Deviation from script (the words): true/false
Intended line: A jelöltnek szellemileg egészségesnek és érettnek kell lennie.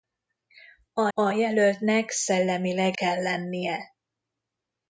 true